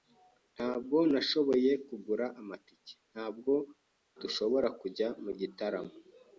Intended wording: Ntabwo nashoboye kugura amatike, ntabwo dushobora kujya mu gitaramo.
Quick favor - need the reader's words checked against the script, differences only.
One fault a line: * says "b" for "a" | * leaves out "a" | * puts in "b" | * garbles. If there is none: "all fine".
all fine